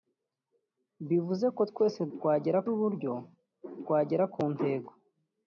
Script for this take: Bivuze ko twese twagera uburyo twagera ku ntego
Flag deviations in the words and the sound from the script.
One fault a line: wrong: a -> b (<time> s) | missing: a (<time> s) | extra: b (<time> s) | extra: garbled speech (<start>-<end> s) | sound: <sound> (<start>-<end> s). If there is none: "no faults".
no faults